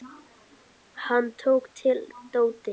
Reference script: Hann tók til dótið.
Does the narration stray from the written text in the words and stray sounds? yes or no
no